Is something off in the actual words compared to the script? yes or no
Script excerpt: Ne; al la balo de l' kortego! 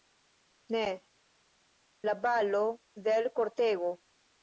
yes